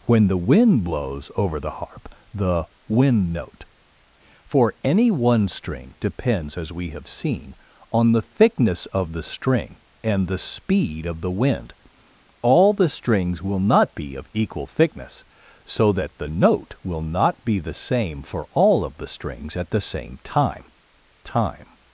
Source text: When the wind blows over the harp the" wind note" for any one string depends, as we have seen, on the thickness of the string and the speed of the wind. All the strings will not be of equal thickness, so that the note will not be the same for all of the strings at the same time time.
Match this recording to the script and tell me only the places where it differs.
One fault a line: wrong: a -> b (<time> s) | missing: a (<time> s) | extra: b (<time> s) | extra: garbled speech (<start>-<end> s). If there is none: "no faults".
no faults